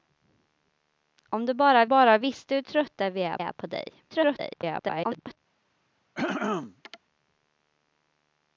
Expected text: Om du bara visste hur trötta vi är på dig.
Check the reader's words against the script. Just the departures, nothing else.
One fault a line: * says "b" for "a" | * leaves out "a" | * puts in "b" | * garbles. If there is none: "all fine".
* puts in "bara"
* puts in "är"
* garbles